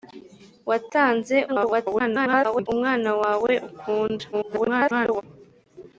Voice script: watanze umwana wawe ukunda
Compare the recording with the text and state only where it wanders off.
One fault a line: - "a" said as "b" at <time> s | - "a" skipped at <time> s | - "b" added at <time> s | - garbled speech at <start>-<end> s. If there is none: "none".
- garbled speech at 1.5-2.7 s
- garbled speech at 4.3-5.2 s